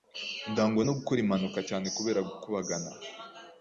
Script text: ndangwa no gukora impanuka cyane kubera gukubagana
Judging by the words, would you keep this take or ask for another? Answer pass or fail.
pass